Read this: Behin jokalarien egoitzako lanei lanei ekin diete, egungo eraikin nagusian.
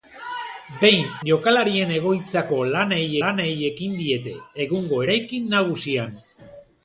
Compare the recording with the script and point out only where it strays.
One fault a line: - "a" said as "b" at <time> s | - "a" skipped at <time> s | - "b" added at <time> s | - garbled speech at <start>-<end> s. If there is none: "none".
none